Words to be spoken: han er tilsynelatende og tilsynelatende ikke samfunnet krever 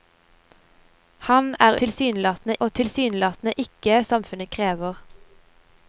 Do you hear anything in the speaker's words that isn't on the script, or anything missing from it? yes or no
no